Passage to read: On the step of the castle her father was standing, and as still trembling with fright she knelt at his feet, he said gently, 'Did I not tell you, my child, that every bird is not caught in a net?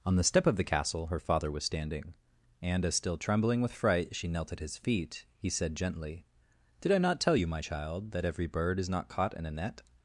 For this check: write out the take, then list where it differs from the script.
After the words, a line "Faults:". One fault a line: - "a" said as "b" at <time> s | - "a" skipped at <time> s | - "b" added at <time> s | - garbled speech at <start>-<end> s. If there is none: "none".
On the step of the castle her father was standing, and as still trembling with fright she knelt at his feet, he said gently, 'Did I not tell you, my child, that every bird is not caught in a net?
Faults:
none